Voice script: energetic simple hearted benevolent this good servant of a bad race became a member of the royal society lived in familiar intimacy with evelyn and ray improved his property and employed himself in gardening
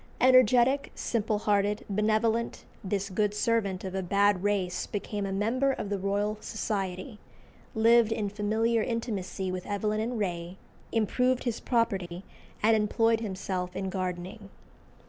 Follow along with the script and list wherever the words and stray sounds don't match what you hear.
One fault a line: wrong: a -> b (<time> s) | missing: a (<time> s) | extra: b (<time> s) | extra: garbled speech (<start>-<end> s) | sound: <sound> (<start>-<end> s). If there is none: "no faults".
sound: dropout (12.1-12.1 s)